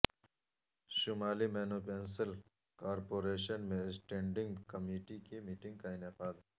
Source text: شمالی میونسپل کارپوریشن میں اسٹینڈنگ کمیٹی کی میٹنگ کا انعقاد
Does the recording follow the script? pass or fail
pass